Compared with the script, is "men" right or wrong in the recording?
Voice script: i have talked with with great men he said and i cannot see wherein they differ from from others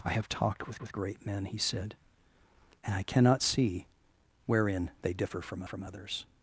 right